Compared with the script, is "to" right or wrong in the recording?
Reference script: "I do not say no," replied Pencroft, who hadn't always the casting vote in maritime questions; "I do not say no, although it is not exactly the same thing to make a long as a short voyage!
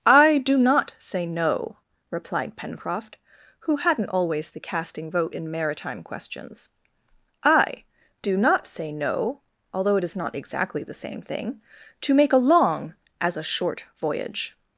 right